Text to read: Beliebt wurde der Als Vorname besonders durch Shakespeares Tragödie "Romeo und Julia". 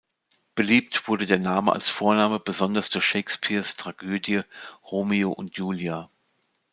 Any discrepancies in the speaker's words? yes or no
yes